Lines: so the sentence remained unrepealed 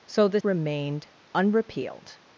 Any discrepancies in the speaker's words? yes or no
yes